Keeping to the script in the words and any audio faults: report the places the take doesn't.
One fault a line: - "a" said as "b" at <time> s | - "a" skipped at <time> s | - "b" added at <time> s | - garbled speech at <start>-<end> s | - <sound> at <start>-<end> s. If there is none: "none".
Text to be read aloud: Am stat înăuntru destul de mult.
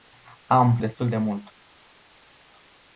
- "stat înăuntru" skipped at 0.8 s